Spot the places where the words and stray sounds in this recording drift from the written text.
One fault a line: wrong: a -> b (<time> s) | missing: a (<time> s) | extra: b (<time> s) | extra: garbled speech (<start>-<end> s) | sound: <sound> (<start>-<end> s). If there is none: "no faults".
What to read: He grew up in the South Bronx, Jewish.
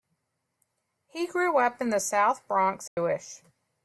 sound: dropout (2.9-3.0 s)